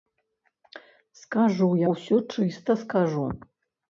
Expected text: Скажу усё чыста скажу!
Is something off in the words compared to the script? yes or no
no